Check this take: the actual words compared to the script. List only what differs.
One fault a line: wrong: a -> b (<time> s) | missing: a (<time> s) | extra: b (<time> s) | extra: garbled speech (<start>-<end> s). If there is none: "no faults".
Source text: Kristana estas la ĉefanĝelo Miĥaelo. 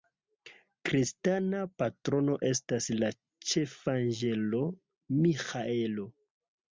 extra: patrono (1.8 s)